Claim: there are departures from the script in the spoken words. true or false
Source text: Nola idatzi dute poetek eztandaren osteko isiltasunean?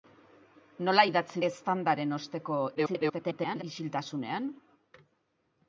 true